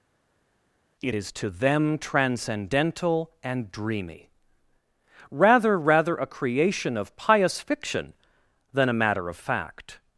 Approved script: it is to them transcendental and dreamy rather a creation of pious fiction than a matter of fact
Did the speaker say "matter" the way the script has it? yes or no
yes